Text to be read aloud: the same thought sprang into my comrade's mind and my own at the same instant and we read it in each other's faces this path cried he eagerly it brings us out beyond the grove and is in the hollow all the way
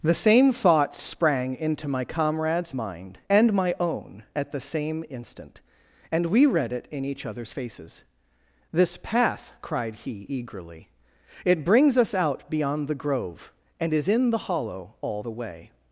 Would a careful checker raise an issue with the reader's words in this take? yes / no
no